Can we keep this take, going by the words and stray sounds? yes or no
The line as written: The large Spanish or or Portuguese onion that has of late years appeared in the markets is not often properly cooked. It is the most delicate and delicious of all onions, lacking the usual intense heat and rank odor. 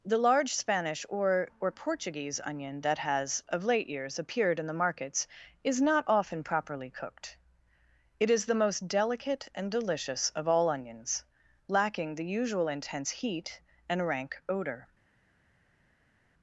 yes